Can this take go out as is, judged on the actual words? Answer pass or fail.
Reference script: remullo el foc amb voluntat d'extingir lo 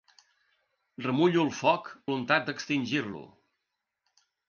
fail